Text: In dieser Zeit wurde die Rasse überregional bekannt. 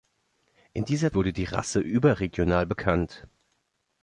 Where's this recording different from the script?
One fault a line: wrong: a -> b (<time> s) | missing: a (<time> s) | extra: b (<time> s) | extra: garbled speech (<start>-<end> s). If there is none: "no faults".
missing: Zeit (1.1 s)